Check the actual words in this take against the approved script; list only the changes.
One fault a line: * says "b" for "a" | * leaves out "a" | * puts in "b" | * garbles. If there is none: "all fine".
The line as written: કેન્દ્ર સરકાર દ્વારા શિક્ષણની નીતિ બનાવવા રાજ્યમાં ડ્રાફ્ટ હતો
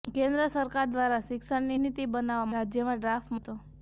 all fine